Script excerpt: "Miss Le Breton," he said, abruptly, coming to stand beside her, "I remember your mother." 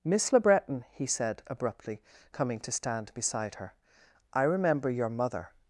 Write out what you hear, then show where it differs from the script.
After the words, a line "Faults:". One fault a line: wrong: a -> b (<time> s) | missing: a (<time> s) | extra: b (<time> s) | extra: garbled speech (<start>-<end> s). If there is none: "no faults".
"Miss Le Breton," he said, abruptly, coming to stand beside her, "I remember your mother."
Faults:
no faults